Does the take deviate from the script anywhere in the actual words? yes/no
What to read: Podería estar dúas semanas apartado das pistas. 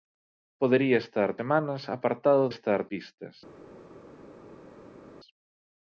yes